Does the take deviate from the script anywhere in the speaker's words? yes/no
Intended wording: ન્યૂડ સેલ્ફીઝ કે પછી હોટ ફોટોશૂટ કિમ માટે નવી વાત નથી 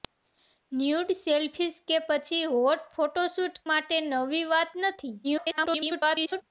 yes